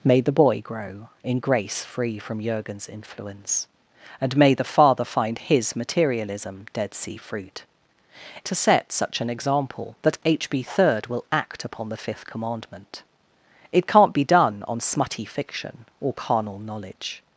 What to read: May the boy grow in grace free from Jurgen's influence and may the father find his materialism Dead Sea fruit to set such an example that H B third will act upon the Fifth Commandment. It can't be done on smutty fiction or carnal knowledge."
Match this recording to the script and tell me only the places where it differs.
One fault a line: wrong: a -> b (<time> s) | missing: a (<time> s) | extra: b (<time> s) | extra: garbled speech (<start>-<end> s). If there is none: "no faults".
no faults